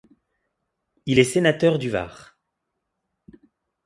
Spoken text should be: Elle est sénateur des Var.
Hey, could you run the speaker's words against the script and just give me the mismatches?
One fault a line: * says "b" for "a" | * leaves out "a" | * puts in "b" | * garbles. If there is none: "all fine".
* says "Il" for "Elle"
* says "du" for "des"